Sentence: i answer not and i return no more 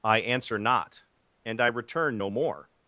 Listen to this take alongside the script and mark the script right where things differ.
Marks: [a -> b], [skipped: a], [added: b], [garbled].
i answer not and i return no more